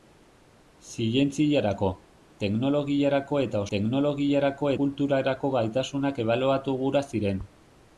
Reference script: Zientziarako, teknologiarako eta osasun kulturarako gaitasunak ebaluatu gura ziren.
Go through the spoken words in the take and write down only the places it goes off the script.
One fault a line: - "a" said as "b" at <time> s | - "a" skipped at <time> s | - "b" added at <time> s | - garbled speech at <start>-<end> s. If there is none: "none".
- "osasun" said as "teknologiarako" at 3.8 s